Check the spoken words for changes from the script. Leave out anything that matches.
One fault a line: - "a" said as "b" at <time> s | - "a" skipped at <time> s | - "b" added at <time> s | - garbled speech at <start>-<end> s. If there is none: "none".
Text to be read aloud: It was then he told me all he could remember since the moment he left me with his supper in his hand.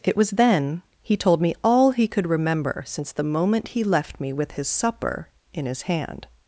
none